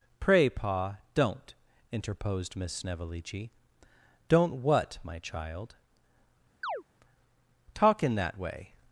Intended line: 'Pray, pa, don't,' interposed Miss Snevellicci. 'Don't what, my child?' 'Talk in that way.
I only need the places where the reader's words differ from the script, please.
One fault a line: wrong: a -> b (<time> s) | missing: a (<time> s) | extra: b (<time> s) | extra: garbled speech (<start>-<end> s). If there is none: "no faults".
no faults